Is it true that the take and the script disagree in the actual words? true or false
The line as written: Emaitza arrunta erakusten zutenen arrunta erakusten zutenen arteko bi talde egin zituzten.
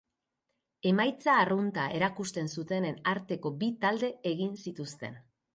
true